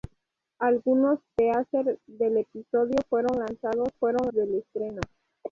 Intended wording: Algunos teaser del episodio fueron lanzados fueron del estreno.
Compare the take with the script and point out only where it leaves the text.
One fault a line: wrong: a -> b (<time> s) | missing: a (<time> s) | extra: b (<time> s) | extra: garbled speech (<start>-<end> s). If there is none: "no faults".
no faults